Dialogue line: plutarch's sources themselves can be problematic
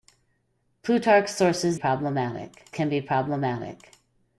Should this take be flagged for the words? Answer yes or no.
yes